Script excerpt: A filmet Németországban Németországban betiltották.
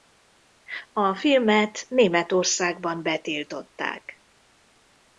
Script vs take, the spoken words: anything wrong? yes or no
yes